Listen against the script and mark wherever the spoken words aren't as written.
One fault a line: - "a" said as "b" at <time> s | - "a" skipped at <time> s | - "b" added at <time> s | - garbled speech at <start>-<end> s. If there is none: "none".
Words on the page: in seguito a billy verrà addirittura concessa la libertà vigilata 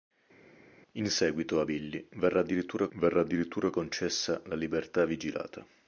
- "verrà addirittura" added at 3.0 s